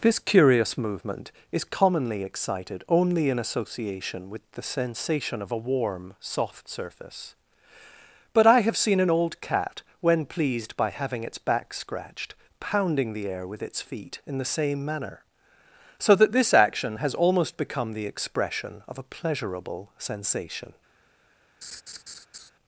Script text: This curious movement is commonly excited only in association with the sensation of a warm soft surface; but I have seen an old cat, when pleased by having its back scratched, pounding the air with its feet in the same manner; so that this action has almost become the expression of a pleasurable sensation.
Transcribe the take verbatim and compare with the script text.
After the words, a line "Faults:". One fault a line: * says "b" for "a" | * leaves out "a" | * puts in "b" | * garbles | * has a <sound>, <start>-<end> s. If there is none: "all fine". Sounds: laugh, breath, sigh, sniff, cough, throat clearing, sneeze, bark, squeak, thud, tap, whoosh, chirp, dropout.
This curious movement is commonly excited only in association with the sensation of a warm soft surface; but I have seen an old cat, when pleased by having its back scratched, pounding the air with its feet in the same manner; so that this action has almost become the expression of a pleasurable sensation.
Faults:
* has a laugh, 21.6-22.5 s